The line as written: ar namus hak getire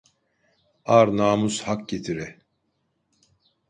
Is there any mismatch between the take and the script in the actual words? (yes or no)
no